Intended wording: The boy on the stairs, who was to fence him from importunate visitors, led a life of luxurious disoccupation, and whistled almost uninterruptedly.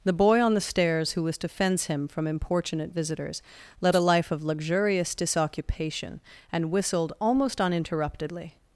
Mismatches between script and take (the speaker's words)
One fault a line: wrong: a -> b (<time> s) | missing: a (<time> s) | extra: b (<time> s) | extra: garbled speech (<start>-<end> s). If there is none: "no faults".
no faults